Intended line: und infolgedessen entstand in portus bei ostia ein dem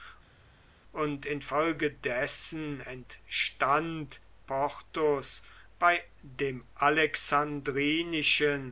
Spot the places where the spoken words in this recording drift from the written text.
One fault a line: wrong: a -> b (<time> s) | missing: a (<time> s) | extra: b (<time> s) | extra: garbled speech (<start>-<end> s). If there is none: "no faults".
missing: in (4.2 s)
missing: ostia ein (6.0 s)